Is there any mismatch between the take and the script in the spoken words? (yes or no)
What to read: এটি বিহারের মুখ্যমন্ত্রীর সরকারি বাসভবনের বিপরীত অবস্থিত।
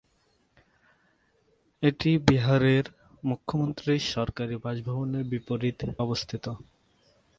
no